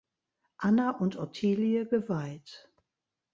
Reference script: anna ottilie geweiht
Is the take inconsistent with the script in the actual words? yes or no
yes